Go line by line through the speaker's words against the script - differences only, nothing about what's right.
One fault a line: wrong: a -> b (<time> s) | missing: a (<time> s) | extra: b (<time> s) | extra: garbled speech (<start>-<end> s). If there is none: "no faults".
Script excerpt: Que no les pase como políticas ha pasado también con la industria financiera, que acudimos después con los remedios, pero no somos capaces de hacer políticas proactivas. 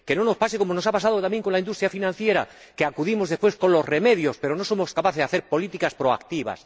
wrong: les -> nos (0.2 s)
wrong: políticas -> nos (0.7 s)